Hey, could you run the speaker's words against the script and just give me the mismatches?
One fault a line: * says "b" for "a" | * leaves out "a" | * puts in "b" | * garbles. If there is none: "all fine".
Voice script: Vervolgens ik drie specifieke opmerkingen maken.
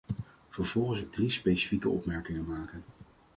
all fine